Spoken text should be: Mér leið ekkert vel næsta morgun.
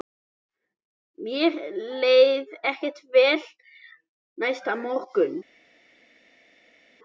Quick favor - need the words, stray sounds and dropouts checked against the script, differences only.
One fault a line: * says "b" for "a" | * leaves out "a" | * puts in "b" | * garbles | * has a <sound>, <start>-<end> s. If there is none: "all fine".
all fine